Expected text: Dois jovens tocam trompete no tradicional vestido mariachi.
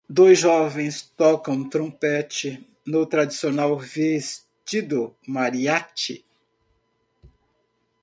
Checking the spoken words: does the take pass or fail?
pass